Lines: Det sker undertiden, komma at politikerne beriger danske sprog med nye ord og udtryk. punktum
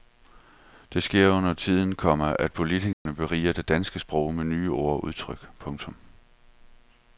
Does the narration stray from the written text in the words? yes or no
yes